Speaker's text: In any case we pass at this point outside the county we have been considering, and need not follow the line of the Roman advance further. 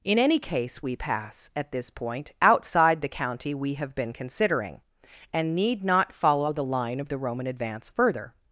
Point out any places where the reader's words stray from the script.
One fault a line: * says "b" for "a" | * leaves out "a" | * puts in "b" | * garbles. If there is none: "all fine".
all fine